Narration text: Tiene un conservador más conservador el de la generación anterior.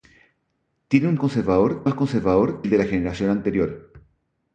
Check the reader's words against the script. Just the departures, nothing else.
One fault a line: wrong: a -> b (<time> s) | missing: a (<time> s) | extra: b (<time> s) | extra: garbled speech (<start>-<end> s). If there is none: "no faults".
no faults